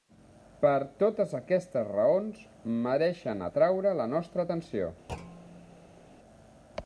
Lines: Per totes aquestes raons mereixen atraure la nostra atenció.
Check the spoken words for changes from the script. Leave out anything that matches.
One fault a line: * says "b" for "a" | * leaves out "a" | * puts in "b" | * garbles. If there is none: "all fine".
all fine